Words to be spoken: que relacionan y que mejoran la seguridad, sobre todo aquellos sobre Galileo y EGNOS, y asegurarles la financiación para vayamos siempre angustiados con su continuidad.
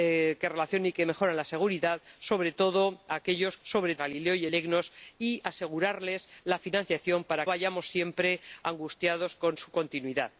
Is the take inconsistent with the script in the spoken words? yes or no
no